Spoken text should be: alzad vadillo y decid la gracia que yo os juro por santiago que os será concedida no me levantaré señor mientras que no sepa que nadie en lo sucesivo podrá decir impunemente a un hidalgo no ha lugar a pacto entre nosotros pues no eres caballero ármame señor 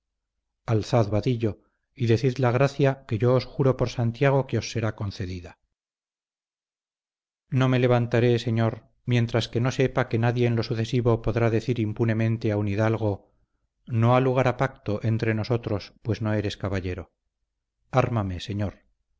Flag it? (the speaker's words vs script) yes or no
no